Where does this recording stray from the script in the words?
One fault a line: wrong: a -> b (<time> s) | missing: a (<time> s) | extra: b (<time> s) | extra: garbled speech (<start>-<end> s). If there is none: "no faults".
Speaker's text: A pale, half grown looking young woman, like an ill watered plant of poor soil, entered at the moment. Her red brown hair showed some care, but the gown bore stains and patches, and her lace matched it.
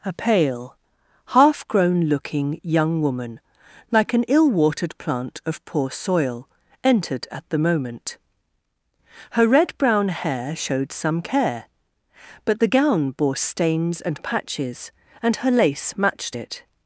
no faults